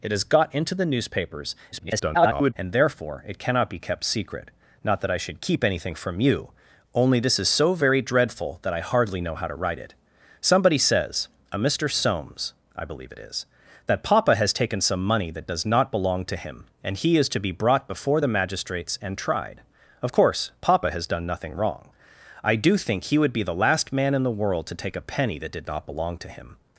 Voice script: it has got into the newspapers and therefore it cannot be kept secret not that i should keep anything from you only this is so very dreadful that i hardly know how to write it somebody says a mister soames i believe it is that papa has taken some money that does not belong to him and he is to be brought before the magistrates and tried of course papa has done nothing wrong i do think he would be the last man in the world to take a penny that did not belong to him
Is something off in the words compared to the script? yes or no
yes